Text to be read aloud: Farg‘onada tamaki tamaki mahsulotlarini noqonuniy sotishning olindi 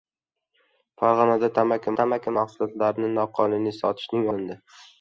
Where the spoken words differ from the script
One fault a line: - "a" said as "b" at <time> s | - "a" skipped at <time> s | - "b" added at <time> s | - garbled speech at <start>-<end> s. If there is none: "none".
none